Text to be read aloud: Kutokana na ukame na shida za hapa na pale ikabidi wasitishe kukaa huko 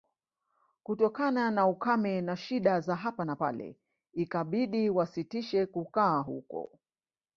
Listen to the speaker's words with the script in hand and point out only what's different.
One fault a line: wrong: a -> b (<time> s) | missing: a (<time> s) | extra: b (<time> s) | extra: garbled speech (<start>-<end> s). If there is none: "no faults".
no faults